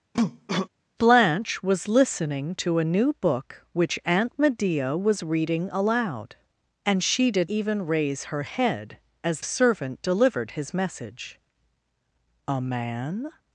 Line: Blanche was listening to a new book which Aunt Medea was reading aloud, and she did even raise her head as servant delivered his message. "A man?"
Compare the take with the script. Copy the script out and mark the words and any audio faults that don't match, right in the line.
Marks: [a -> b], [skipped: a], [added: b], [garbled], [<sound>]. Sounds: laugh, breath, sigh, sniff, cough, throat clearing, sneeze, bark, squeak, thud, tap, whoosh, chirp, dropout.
[cough] Blanche was listening to a new book which Aunt Medea was reading aloud, and she did even raise her head as servant delivered his message. "A man?"